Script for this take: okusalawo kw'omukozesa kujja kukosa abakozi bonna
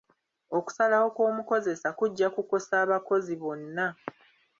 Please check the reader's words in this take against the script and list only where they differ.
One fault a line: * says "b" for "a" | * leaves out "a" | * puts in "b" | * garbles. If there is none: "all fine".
all fine